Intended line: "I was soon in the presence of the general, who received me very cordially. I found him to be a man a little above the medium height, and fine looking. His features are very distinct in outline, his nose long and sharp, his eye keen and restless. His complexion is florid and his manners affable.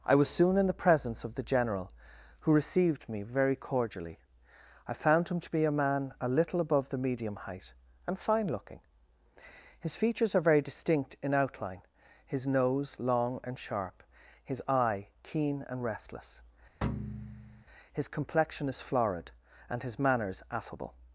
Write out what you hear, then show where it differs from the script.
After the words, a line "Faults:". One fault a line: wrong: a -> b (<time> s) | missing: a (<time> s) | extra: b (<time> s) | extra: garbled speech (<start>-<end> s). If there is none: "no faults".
"I was soon in the presence of the general, who received me very cordially. I found him to be a man a little above the medium height, and fine looking. His features are very distinct in outline, his nose long and sharp, his eye keen and restless. His complexion is florid and his manners affable.
Faults:
no faults